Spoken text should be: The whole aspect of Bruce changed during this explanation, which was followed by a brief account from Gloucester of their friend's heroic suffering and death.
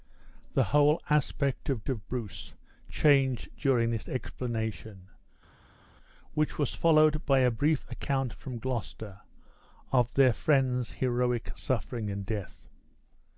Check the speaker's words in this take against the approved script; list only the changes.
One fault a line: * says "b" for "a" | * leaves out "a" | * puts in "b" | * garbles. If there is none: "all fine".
* puts in "of"